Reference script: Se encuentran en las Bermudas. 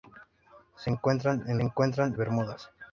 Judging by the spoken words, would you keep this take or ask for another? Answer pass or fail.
fail